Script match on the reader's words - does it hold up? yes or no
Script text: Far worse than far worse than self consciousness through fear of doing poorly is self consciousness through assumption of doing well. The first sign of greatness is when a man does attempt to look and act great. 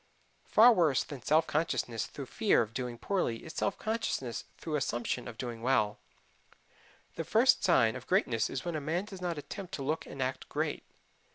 no